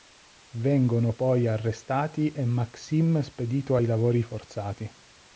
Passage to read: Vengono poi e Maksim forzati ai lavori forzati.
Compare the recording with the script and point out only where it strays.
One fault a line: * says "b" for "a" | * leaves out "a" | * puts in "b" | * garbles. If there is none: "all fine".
* puts in "arrestati"
* says "spedito" for "forzati"